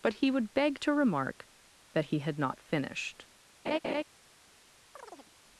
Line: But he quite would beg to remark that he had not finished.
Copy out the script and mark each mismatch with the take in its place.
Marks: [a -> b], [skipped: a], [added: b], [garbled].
But he [skipped: quite] would beg to remark that he had not finished.